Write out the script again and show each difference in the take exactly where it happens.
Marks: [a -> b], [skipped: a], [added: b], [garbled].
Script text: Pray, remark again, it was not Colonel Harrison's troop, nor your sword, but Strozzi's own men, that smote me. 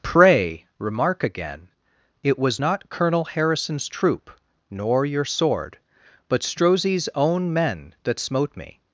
Pray, remark again, it was not Colonel Harrison's troop, nor your sword, but Strozzi's own men, that smote me.